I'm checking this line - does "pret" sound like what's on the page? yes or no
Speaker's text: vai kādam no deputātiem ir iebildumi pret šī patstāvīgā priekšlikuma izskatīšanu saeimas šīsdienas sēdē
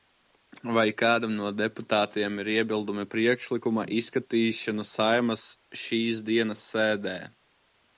no